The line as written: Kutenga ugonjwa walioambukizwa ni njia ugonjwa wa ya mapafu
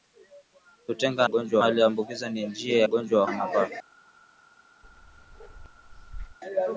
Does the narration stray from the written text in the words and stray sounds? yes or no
yes